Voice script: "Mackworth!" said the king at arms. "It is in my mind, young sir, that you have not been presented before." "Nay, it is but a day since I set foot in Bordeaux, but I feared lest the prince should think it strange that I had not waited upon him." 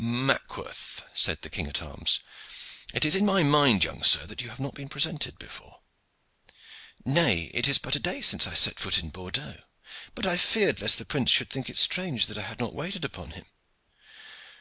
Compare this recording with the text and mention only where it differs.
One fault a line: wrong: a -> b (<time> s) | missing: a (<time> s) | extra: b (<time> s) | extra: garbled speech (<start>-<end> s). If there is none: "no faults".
no faults